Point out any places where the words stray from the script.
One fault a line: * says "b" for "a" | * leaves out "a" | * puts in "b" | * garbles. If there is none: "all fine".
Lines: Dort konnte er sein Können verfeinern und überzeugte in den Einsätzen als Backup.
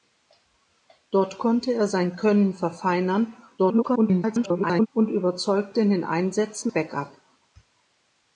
* garbles
* leaves out "als"